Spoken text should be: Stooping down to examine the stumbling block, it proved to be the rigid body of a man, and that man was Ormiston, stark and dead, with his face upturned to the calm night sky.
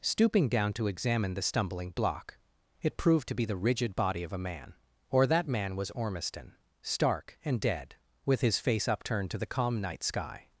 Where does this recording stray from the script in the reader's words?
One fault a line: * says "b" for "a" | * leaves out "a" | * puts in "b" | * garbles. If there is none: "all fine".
* says "or" for "and"